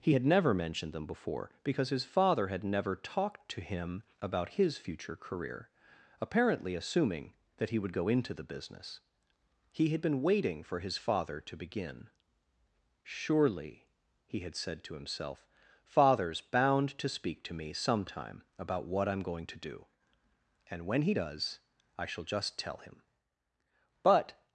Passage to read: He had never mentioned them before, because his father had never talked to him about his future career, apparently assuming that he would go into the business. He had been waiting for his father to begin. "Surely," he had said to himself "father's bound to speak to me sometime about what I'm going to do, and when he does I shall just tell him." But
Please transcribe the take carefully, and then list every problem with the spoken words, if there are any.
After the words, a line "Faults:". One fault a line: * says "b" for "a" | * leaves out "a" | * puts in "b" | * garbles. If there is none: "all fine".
He had never mentioned them before, because his father had never talked to him about his future career, apparently assuming that he would go into the business. He had been waiting for his father to begin. "Surely," he had said to himself "father's bound to speak to me sometime about what I'm going to do, and when he does I shall just tell him." But
Faults:
all fine